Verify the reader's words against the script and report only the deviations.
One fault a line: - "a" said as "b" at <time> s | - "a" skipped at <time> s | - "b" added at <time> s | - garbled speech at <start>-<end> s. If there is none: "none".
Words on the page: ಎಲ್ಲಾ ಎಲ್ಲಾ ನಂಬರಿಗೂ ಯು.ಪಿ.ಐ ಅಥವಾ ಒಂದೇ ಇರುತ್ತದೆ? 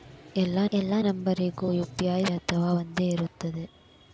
none